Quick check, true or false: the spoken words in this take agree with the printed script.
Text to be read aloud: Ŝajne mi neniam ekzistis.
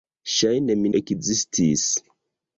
false